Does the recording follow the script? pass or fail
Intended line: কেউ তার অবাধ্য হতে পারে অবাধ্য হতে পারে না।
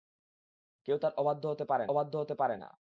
pass